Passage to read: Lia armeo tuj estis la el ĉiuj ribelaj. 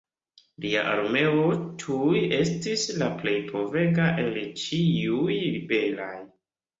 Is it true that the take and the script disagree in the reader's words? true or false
true